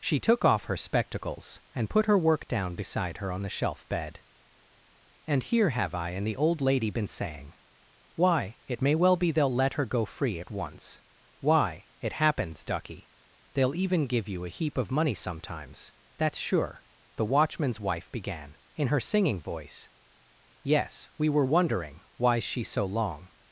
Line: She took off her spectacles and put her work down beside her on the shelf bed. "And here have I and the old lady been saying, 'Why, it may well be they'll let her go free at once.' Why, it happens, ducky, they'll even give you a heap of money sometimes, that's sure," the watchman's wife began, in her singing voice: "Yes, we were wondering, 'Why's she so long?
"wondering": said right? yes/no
yes